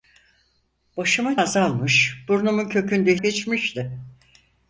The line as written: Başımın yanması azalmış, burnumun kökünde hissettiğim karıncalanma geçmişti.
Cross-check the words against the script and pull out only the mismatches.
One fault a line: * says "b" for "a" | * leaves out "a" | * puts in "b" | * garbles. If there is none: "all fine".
* leaves out "yanması"
* leaves out "hissettiğim karıncalanma"